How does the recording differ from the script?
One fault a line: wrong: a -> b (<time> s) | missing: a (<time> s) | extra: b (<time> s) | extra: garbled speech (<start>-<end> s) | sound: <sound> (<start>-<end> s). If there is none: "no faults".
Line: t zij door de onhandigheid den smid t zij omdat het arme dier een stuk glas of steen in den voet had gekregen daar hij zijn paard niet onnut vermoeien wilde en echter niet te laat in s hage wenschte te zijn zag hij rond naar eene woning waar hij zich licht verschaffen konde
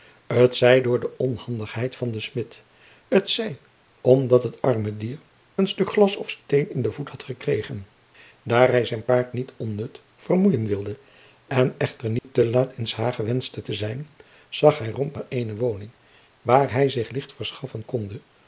extra: van (1.9 s)
sound: dropout (12.2-12.2 s)